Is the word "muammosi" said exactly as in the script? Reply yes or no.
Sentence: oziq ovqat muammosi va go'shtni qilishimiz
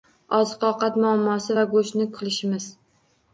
yes